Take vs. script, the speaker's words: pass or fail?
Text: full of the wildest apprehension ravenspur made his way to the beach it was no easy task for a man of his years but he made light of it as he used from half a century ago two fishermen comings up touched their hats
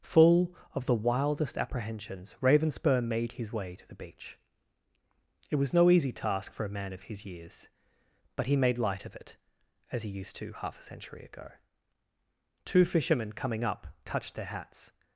fail